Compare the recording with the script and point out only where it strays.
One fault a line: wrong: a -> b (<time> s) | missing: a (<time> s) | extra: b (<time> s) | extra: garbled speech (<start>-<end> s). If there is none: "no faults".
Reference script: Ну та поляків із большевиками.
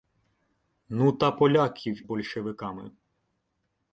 missing: із (2.1 s)